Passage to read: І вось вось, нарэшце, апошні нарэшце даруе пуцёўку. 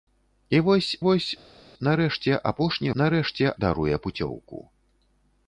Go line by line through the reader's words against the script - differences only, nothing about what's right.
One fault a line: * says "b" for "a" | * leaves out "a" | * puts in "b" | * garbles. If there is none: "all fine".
all fine